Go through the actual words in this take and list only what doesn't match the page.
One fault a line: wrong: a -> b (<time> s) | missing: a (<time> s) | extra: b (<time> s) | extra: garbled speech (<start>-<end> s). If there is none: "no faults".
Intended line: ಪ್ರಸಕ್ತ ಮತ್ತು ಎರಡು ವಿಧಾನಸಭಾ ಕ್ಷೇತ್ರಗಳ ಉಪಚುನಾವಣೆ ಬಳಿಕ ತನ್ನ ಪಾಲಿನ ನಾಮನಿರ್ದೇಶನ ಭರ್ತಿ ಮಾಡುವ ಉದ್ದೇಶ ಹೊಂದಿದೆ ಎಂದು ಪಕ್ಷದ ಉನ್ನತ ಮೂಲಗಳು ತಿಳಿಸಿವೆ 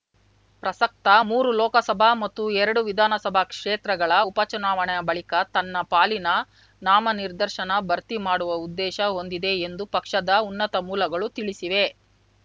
extra: ಮೂರು ಲೋಕಸಭಾ (1.2 s)